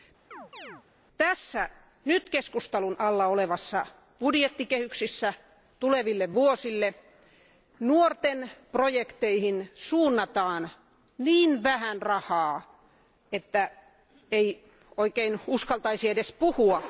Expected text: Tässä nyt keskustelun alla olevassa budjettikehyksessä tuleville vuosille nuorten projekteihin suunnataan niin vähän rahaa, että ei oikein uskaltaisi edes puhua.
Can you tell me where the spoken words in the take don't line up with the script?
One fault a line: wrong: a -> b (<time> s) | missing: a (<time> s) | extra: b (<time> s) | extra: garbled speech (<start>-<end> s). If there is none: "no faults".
no faults